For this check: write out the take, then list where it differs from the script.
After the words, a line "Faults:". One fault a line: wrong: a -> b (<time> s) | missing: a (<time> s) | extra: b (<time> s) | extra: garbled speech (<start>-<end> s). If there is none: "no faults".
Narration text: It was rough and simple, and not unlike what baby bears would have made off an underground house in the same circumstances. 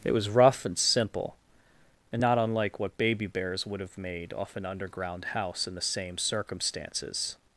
It was rough and simple, and not unlike what baby bears would have made off an underground house in the same circumstances.
Faults:
no faults